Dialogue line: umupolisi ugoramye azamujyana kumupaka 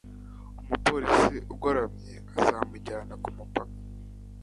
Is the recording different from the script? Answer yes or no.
no